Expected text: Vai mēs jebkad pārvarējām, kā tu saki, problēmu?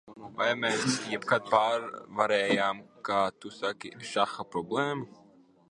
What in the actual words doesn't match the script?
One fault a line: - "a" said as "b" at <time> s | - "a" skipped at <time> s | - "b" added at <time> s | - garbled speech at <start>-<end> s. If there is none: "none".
- "šaha" added at 4.1 s